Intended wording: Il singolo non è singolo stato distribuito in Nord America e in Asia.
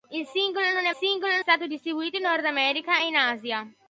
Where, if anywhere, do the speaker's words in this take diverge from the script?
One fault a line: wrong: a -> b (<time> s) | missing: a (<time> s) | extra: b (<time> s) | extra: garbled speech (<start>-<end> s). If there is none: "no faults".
no faults